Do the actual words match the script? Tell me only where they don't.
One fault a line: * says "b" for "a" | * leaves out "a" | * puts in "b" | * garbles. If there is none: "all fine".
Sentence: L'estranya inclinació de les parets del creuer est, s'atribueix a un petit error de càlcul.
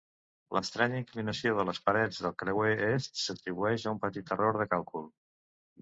all fine